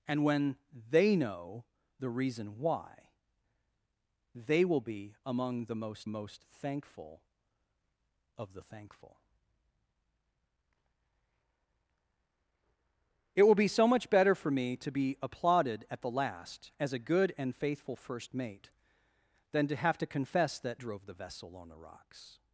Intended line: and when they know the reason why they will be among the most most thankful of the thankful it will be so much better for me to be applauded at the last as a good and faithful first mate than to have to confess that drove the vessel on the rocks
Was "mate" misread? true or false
false